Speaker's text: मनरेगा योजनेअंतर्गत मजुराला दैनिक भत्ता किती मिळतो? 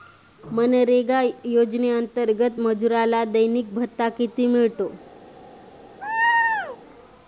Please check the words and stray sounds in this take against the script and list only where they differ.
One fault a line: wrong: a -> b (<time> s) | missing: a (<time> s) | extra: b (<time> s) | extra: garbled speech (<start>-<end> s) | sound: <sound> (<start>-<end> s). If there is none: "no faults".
sound: laugh (6.0-6.8 s)